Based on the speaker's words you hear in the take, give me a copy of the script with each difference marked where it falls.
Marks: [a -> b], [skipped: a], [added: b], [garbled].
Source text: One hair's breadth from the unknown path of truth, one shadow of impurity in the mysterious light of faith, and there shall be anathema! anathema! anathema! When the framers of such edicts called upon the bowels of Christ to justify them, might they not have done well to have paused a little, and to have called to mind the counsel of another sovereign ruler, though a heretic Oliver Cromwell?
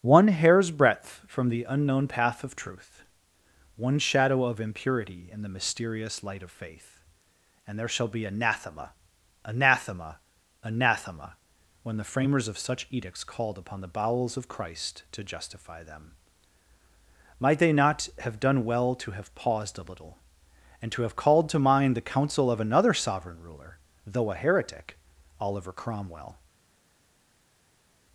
One hair's breadth from the unknown path of truth, one shadow of impurity in the mysterious light of faith, and there shall be anathema! anathema! anathema! When the framers of such edicts called upon the bowels of Christ to justify them, might they not have done well to have paused a little, and to have called to mind the counsel of another sovereign ruler, though a heretic Oliver Cromwell?